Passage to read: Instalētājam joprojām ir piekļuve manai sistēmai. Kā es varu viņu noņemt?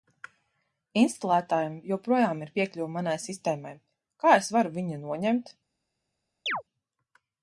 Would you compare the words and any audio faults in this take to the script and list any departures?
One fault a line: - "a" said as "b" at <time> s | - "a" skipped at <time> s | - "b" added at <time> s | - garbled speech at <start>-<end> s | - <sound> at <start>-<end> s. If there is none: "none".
- chirp at 6.5-6.6 s